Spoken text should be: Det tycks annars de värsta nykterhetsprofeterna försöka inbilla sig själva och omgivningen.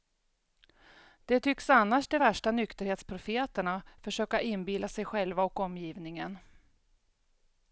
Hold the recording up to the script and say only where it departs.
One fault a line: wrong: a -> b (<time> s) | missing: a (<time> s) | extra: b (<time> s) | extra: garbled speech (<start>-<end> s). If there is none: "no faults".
no faults